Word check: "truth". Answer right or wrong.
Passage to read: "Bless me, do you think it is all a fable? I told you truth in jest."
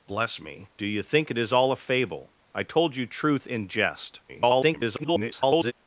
right